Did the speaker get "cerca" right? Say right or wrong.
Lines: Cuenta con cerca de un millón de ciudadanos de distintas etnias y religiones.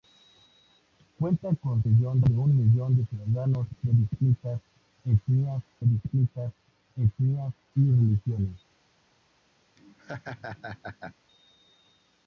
wrong